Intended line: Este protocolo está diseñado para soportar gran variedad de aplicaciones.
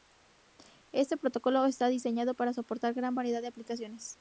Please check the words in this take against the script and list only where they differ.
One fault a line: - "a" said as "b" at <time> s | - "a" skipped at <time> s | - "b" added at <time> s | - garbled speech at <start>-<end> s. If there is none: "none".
none